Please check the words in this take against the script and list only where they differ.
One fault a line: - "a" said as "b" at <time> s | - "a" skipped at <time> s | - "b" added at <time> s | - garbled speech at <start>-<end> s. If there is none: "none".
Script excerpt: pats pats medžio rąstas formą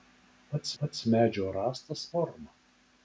none